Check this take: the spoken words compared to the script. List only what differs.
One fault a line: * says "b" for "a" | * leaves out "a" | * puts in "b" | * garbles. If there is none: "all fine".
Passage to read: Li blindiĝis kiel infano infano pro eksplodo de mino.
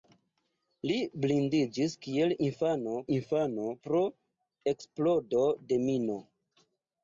all fine